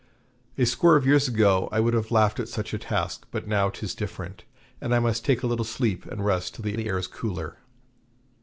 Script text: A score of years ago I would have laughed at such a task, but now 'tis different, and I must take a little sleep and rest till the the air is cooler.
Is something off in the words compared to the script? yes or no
no